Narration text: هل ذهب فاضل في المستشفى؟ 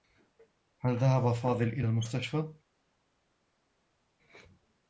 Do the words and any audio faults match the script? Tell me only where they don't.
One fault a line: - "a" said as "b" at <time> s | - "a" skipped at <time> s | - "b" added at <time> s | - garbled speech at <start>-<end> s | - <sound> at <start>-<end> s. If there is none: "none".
- "في" said as "إلى" at 1.7 s